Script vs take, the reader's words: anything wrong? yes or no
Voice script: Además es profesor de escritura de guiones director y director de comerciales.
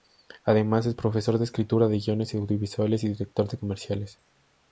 yes